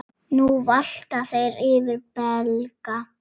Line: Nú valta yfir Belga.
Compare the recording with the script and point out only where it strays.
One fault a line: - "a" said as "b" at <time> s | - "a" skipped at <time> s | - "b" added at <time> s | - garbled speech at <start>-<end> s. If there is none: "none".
- "þeir" added at 1.3 s